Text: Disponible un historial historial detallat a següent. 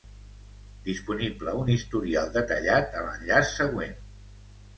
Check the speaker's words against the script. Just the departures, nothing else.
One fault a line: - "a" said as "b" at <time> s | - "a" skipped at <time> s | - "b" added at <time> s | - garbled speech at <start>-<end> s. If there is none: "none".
- "historial" skipped at 2.3 s
- "l'enllaç" added at 3.1 s